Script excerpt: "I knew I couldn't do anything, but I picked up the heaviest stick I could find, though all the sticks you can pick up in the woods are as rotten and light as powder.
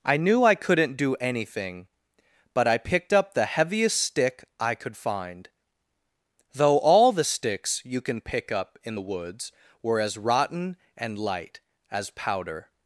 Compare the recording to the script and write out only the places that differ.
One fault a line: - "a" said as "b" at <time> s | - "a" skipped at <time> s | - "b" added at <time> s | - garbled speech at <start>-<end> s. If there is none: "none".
- "are" said as "were" at 9.8 s